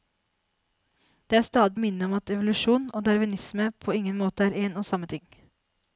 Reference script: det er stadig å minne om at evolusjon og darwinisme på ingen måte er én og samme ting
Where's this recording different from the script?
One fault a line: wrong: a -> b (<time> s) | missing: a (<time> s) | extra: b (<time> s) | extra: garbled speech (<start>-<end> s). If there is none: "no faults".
no faults